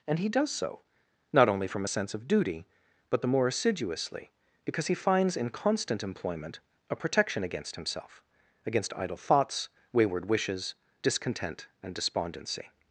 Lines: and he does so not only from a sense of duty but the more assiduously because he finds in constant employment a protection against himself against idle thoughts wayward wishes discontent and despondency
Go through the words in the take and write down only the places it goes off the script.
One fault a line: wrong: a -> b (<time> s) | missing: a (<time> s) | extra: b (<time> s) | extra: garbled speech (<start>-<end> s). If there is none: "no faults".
no faults